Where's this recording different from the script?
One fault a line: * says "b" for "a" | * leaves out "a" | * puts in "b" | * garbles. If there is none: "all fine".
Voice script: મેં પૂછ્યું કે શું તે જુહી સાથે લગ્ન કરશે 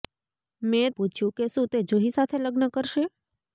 all fine